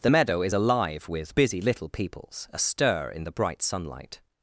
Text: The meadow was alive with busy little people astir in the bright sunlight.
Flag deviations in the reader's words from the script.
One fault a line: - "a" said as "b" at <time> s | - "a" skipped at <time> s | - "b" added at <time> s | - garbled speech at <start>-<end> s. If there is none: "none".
- "was" said as "is" at 0.4 s
- "people" said as "peoples" at 1.9 s